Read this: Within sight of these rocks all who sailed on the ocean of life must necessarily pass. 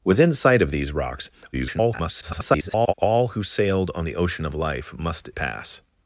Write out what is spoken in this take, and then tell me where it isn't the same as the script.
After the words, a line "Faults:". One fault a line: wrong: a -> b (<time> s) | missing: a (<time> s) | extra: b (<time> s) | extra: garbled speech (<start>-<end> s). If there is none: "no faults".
Within sight of these rocks [garbled] all who sailed on the ocean of life must pass.
Faults:
extra: garbled speech (1.5-2.9 s)
missing: necessarily (5.3 s)